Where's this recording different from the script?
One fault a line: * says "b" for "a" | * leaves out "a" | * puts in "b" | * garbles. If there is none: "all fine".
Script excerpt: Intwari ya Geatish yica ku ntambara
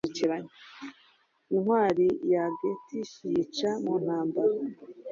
* says "mu" for "ku"